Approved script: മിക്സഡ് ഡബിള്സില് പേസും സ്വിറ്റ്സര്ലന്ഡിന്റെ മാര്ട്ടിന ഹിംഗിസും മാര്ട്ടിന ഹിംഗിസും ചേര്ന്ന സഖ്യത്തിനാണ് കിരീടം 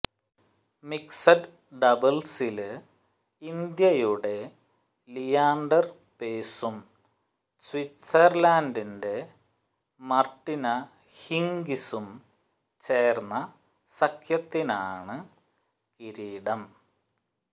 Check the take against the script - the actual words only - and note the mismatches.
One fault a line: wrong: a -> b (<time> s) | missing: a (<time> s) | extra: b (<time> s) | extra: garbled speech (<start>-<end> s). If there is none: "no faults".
extra: ഇന്ത്യയുടെ ലിയാന്ഡര് (3.4 s)
missing: മാര്ട്ടിന ഹിംഗിസും (12.1 s)